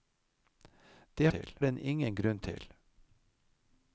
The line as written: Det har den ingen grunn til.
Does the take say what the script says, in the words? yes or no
no